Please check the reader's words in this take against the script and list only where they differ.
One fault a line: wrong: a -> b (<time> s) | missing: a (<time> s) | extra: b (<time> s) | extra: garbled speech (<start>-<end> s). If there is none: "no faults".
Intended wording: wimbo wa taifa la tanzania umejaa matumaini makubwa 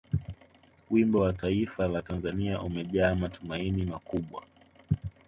no faults